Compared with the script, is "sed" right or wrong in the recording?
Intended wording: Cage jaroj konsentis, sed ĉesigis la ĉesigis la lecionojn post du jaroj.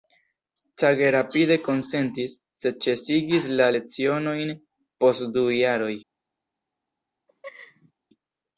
right